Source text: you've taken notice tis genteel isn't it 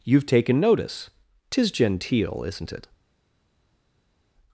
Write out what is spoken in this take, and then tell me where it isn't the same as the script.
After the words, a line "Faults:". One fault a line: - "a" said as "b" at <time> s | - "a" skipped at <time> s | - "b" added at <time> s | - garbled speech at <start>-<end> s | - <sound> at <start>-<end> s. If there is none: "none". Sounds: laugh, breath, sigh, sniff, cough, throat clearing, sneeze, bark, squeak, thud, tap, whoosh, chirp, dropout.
you've taken notice tis genteel isn't it
Faults:
none